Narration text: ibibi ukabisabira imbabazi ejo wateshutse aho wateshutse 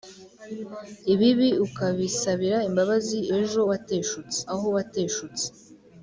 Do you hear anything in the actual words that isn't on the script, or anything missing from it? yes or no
no